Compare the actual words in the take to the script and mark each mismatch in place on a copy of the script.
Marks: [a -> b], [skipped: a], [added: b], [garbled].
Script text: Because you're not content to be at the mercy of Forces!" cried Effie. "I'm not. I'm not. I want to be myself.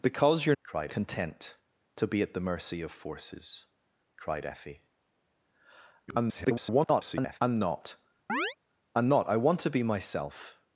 Because you're [not -> cried] content to be at the mercy of Forces!" cried Effie. [garbled] "I'm not. I'm not. I want to be myself.